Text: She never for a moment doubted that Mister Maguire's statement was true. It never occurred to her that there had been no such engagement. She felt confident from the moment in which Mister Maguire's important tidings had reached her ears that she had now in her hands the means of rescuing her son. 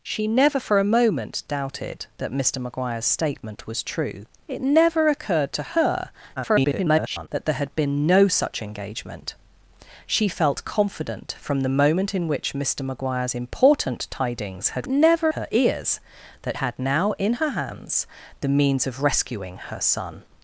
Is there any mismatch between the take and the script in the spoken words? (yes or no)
yes